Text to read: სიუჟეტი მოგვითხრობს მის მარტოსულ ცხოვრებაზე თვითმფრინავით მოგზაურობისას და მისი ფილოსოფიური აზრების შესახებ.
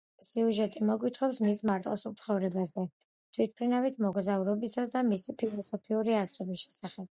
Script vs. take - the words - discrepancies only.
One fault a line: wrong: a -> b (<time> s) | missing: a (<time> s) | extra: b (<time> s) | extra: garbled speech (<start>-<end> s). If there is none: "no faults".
no faults